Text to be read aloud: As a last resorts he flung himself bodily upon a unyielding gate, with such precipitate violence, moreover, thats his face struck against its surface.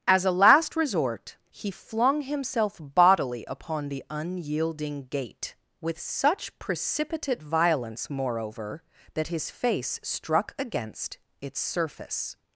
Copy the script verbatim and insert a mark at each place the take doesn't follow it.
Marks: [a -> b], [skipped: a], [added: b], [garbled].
As a last [resorts -> resort] he flung himself bodily upon [a -> the] unyielding gate, with such precipitate violence, moreover, [thats -> that] his face struck against its surface.